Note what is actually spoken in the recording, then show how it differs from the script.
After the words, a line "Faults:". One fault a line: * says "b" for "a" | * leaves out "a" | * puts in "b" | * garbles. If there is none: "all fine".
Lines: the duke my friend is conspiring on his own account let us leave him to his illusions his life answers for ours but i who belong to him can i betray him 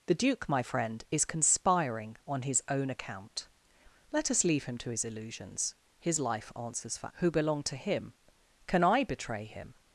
the duke my friend is conspiring on his own account let us leave him to his illusions his life answers for who belong to him can i betray him
Faults:
* leaves out "ours but i"